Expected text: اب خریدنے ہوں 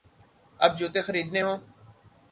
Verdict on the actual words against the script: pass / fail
fail